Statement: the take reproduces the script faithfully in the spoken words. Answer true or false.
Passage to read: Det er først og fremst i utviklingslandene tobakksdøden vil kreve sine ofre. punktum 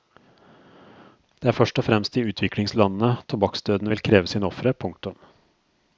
true